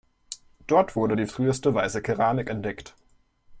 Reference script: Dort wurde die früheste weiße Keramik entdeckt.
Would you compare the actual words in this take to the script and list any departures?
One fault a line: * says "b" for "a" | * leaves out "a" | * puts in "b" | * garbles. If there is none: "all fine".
all fine